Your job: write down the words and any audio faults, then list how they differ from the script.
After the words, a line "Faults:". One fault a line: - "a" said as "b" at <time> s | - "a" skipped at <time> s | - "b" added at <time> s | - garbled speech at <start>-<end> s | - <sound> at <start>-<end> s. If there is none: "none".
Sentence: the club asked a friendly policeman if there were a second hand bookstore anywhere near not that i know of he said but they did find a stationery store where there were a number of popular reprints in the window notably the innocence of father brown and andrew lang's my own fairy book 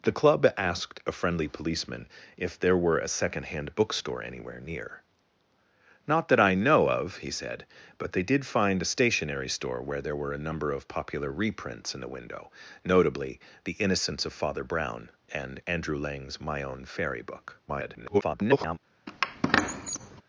the club asked a friendly policeman if there were a second hand bookstore anywhere near not that i know of he said but they did find a stationery store where there were a number of popular reprints in the window notably the innocence of father brown and andrew lang's my own fairy book [garbled]
Faults:
- garbled speech at 17.7-18.8 s
- squeak at 19.1-20.2 s